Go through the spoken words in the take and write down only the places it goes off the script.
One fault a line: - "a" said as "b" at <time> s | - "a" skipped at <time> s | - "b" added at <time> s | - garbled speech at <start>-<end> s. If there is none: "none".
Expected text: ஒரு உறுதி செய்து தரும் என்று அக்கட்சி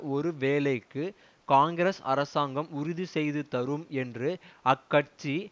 - "வேலைக்கு காங்கிரஸ் அரசாங்கம்" added at 0.3 s